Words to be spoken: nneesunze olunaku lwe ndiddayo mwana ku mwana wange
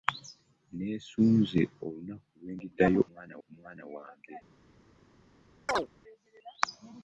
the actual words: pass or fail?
pass